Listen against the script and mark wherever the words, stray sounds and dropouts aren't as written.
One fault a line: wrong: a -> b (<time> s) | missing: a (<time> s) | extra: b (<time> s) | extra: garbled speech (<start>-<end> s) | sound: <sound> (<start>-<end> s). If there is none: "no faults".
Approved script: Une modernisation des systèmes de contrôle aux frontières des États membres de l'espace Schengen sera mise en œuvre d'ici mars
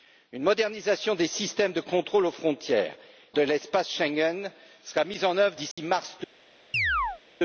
missing: des États membres (3.0 s)
sound: dropout (5.7-5.8 s)
sound: chirp (6.7-7.2 s)